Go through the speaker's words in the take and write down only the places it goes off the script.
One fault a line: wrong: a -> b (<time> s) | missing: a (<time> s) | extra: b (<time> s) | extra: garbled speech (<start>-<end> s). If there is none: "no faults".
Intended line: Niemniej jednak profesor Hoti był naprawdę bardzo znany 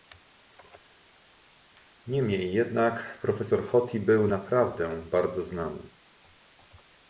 no faults